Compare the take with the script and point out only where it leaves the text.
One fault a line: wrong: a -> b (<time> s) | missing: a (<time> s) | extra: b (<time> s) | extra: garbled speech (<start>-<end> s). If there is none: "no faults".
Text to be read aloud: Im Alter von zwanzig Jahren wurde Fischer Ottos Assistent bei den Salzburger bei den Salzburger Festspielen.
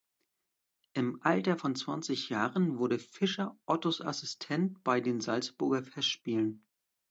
missing: bei den Salzburger (5.8 s)